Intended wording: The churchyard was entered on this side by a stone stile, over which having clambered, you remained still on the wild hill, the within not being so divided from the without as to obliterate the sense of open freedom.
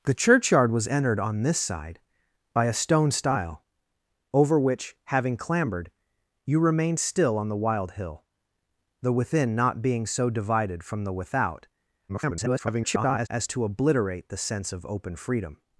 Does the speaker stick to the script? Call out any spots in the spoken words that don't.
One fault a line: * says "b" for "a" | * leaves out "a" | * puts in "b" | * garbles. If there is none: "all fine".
* garbles